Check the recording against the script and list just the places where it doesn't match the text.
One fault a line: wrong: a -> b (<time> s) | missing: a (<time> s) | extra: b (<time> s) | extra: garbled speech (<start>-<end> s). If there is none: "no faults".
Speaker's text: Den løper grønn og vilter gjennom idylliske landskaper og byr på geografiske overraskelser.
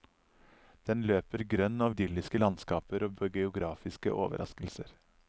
missing: vilter gjennom (1.9 s)
missing: byr (3.1 s)